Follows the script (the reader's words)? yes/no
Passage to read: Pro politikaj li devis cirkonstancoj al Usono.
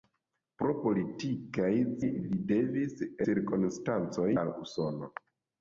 yes